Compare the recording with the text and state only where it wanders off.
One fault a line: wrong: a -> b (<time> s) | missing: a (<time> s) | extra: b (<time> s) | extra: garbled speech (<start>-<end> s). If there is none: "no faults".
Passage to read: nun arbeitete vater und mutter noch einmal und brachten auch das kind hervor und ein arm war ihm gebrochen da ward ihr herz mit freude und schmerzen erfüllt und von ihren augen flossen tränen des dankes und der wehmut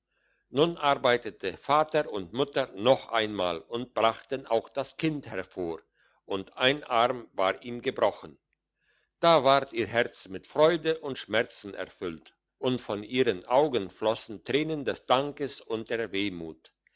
no faults